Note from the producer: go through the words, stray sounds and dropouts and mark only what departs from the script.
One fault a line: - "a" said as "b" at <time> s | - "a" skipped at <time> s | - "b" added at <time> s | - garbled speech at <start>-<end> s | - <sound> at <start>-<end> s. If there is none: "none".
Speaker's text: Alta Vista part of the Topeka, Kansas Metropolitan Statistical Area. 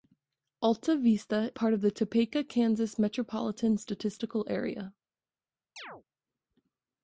- chirp at 5.8-6.0 s